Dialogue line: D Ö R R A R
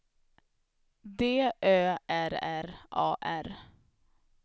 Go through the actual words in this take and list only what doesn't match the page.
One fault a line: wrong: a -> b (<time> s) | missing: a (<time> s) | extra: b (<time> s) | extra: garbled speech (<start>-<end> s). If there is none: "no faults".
no faults